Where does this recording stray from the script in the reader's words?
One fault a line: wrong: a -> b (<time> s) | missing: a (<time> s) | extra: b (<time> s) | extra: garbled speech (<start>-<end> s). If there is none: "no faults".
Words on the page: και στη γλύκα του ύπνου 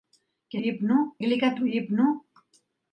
wrong: στη -> ύπνου (0.6 s)